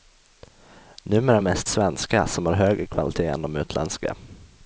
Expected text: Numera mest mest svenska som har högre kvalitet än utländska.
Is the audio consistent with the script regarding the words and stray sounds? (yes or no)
no